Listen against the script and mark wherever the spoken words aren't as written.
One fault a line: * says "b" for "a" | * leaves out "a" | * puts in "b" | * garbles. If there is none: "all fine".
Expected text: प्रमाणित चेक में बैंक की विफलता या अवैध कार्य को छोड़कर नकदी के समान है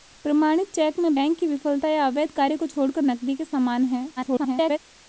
* garbles